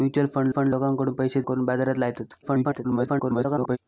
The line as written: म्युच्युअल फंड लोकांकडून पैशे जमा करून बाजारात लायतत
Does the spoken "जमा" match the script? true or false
false